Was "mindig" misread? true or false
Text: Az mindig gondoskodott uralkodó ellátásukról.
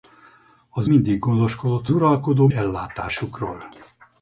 false